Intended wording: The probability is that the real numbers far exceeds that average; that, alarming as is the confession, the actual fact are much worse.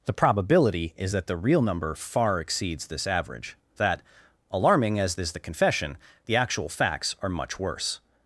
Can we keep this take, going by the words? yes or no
no